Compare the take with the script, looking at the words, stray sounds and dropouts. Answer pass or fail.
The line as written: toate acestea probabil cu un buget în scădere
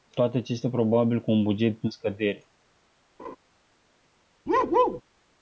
fail